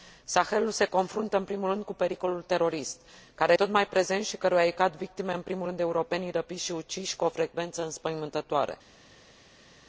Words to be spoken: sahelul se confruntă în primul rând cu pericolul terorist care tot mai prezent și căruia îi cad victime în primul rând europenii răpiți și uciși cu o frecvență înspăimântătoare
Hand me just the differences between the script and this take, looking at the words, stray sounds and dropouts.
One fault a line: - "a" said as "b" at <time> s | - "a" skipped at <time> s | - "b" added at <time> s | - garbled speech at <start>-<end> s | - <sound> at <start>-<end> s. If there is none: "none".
none